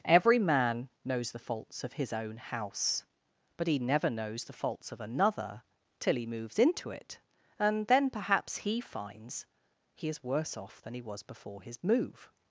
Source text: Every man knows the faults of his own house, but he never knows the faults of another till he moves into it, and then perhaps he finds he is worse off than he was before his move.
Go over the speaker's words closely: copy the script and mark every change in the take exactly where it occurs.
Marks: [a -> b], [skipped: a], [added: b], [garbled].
Every man knows the faults of his own house, but he never knows the faults of another till he moves into it, and then perhaps he finds he is worse off than he was before his move.